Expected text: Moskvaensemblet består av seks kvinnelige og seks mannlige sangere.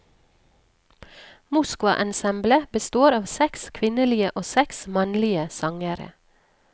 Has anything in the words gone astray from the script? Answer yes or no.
no